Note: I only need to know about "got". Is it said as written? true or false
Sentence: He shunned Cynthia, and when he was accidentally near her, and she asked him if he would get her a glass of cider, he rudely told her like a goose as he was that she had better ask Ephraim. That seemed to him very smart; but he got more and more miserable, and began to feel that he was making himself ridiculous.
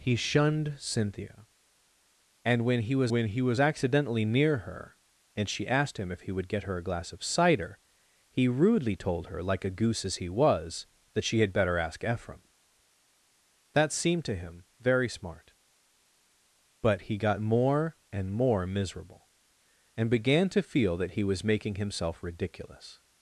true